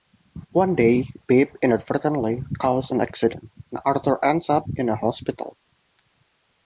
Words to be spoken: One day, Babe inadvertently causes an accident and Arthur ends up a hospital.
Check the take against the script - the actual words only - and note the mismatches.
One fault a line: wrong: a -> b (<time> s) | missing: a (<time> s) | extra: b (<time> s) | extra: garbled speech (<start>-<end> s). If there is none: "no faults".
extra: in (4.7 s)